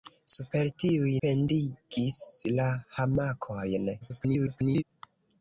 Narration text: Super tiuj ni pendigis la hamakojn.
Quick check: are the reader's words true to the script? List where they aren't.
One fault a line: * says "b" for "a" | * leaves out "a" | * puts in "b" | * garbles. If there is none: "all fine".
* leaves out "ni"
* garbles